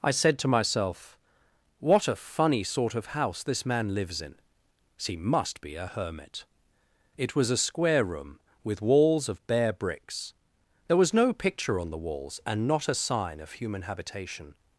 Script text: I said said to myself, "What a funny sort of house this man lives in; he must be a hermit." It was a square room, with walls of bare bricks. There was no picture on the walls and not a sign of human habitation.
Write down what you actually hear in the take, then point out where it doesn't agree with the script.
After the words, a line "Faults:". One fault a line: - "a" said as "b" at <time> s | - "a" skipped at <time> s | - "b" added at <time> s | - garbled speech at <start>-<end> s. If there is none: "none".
I said to myself, "What a funny sort of house this man lives in; he must be a hermit." It was a square room, with walls of bare bricks. There was no picture on the walls and not a sign of human habitation.
Faults:
- "said" skipped at 0.4 s